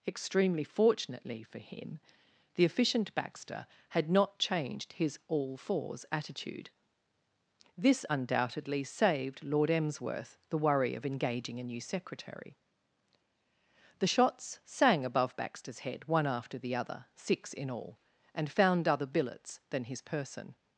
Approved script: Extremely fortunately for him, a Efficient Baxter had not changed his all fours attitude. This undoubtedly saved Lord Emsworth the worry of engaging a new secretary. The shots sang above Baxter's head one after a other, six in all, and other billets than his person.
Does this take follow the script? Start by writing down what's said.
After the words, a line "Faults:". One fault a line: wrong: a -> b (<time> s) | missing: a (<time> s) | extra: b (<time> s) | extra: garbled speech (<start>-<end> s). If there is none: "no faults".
Extremely fortunately for him, the Efficient Baxter had not changed his all fours attitude. This undoubtedly saved Lord Emsworth the worry of engaging a new secretary. The shots sang above Baxter's head one after the other, six in all, and found other billets than his person.
Faults:
wrong: a -> the (2.5 s)
wrong: a -> the (16.6 s)
extra: found (18.5 s)